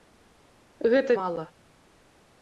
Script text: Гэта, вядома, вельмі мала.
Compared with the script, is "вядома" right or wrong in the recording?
wrong